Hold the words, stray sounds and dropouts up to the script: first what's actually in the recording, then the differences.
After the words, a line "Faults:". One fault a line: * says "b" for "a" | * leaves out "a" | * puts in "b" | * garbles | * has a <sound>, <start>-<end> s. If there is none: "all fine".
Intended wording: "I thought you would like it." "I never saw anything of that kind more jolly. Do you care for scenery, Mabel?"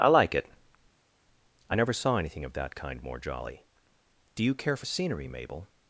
"I like it." "I never saw anything of that kind more jolly. Do you care for scenery, Mabel?"
Faults:
* leaves out "thought you would"